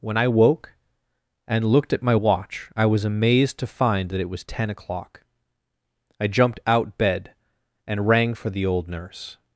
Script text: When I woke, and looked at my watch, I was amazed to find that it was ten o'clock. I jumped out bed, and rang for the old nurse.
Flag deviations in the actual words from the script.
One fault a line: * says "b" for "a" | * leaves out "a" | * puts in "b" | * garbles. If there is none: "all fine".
all fine